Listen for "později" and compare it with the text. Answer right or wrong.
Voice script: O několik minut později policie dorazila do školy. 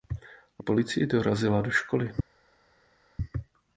wrong